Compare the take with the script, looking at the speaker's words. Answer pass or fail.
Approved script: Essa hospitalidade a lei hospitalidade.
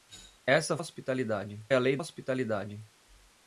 pass